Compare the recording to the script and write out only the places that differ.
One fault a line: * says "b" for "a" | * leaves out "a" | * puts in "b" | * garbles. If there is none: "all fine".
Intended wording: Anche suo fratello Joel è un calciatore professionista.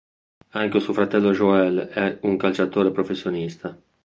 all fine